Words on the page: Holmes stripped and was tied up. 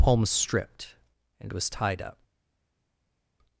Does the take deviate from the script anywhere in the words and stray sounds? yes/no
yes